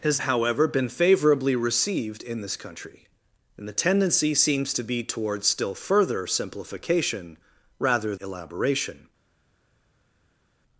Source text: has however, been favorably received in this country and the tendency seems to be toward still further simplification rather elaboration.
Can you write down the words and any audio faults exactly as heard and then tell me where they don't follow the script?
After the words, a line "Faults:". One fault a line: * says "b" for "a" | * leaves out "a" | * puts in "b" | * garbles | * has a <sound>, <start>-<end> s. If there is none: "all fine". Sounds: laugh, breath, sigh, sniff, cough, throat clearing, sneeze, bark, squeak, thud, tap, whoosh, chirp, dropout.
has however, been favorably received in this country and the tendency seems to be toward still further simplification rather elaboration.
Faults:
all fine